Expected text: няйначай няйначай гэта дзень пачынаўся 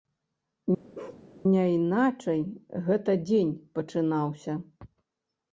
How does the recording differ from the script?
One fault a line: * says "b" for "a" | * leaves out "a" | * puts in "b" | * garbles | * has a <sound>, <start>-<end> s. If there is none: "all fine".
* has a bark, 0.9-1.2 s
* leaves out "няйначай"